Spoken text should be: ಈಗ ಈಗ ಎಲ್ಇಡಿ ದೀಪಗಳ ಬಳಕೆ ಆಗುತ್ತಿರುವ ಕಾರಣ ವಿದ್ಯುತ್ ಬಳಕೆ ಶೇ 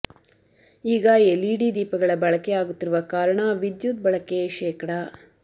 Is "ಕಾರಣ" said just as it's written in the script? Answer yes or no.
yes